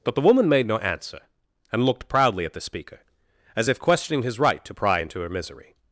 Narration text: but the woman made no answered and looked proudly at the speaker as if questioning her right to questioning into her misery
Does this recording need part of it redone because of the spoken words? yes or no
yes